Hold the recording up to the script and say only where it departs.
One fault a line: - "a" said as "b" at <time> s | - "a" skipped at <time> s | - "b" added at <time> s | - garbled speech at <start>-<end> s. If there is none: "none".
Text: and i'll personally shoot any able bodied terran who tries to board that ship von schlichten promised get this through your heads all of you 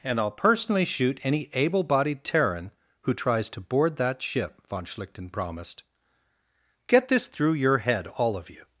- "heads" said as "head" at 7.8 s